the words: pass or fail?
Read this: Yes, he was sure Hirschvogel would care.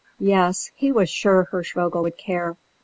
pass